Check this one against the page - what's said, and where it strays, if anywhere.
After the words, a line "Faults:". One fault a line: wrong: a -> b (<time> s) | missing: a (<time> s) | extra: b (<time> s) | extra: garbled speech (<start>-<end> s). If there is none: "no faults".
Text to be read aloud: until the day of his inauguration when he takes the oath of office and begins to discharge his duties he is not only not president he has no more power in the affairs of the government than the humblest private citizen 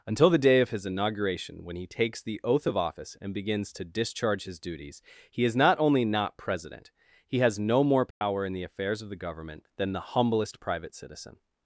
until the day of his inauguration when he takes the oath of office and begins to discharge his duties he is not only not president he has no more power in the affairs of the government than the humblest private citizen
Faults:
no faults